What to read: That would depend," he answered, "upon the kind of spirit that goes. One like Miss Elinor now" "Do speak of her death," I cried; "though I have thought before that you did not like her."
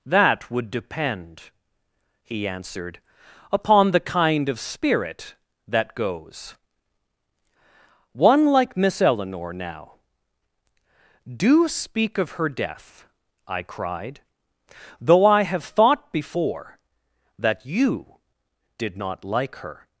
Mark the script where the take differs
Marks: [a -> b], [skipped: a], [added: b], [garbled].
That would depend," he answered, "upon the kind of spirit that goes. One like Miss Elinor now" "Do speak of her death," I cried; "though I have thought before that you did not like her."